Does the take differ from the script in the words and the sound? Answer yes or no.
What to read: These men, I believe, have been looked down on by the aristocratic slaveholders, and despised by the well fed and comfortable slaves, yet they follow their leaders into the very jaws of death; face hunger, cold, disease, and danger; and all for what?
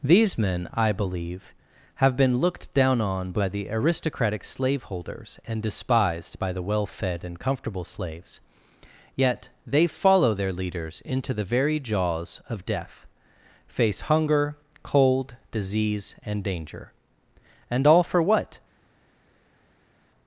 no